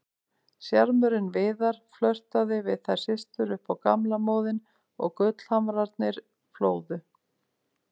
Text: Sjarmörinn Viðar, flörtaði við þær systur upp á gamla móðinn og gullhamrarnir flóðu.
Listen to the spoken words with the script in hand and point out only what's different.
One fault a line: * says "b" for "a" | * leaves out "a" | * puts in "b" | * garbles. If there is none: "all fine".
all fine